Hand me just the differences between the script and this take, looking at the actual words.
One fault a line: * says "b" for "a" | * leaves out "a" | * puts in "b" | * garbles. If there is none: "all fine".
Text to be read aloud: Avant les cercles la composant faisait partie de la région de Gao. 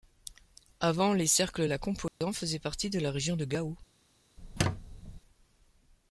all fine